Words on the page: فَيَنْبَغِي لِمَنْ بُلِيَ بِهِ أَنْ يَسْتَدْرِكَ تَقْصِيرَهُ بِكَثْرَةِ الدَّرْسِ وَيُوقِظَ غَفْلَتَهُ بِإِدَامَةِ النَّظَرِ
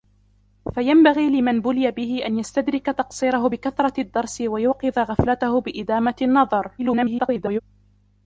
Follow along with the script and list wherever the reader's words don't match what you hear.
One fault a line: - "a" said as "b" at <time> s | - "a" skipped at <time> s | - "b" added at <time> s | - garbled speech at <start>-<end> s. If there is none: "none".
- garbled speech at 6.8-7.6 s